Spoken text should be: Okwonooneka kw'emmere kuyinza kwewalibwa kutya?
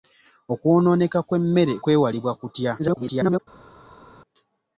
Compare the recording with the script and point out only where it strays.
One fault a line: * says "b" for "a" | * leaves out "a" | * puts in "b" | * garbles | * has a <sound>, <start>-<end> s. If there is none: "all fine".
* leaves out "kuyinza"
* garbles